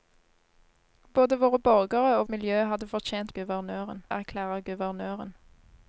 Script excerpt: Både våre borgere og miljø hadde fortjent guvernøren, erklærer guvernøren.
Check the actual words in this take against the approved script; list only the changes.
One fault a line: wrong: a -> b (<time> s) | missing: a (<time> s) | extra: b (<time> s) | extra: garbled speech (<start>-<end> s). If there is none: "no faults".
no faults